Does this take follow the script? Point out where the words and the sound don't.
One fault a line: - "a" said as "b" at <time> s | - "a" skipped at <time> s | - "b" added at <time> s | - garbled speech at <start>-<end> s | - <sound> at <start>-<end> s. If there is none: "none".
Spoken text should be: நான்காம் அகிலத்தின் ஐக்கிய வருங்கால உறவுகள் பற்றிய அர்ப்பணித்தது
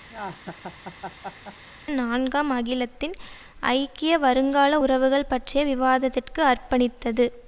- laugh at 0.1-1.6 s
- "விவாதத்திற்கு" added at 5.6 s